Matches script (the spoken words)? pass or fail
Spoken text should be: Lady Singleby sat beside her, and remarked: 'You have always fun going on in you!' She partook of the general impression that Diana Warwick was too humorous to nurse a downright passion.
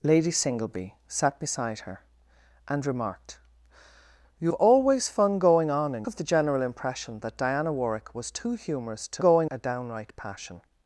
fail